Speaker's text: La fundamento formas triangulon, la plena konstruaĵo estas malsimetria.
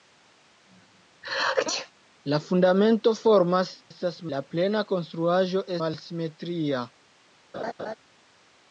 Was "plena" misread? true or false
false